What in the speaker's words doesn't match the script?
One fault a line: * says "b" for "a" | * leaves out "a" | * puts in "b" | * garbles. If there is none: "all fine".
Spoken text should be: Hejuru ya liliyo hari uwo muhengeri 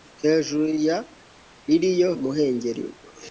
* leaves out "hari uwo"